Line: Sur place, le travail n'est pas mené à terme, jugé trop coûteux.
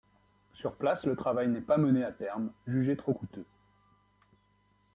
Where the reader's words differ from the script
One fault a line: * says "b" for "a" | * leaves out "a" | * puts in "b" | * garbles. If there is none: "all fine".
all fine